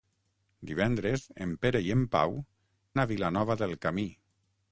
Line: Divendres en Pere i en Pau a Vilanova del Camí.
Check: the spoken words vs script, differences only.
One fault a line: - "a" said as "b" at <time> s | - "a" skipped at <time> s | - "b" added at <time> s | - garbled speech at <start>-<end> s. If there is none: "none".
none